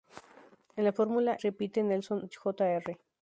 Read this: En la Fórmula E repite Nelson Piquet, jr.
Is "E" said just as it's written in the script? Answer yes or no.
no